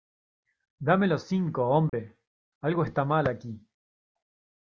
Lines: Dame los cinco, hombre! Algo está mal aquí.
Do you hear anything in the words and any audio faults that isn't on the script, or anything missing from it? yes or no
yes